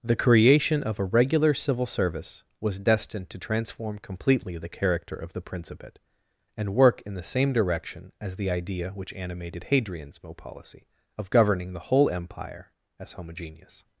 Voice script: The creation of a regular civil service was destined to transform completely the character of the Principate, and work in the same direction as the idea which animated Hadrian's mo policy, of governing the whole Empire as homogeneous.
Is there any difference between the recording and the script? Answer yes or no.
no